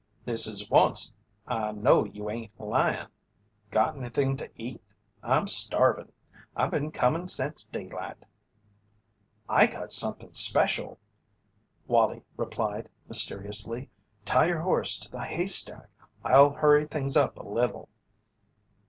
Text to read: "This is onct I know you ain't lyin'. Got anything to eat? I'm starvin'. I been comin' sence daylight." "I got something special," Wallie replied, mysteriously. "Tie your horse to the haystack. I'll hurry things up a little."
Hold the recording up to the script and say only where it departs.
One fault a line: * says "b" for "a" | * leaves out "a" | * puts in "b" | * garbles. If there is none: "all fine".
all fine